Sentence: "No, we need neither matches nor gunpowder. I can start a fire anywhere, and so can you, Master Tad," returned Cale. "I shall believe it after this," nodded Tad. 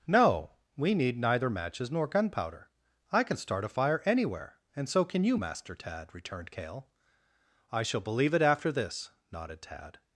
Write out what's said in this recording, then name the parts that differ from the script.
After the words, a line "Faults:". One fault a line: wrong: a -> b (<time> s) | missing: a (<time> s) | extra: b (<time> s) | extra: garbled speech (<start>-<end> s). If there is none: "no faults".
"No, we need neither matches nor gunpowder. I can start a fire anywhere, and so can you, Master Tad," returned Cale. "I shall believe it after this," nodded Tad.
Faults:
no faults